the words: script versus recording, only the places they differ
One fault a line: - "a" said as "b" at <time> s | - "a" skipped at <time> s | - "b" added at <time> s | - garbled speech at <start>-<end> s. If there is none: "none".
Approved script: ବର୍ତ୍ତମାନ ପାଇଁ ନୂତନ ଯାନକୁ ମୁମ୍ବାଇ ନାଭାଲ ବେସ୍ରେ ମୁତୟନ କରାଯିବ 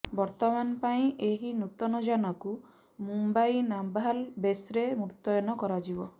- "ଏହି" added at 1.2 s